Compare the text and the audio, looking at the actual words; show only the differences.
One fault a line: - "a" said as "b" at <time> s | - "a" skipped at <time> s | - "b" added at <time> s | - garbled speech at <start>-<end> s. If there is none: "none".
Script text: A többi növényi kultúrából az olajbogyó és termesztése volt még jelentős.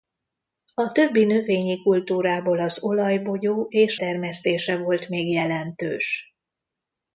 none